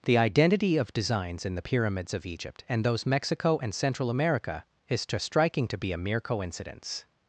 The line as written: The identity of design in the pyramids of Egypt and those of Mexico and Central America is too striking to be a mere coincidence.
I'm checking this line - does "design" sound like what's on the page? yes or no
no